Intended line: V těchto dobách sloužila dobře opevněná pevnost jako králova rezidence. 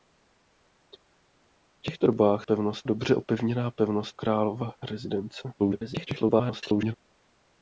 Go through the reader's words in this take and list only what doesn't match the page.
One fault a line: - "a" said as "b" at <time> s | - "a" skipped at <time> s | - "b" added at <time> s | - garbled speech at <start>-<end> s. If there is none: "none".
- "sloužila" said as "pevnost" at 2.4 s
- "jako" skipped at 4.2 s
- garbled speech at 5.6-6.9 s